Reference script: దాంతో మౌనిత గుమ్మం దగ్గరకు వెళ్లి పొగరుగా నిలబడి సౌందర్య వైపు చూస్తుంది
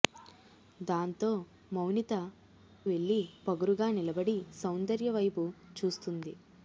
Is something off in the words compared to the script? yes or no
yes